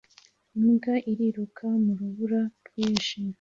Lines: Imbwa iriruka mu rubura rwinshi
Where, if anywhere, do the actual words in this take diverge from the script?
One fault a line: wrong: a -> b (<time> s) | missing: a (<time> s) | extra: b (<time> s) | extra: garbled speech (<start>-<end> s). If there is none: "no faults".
no faults